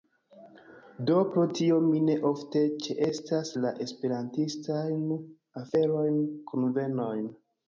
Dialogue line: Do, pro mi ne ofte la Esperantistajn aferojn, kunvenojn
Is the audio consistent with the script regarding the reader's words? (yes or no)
no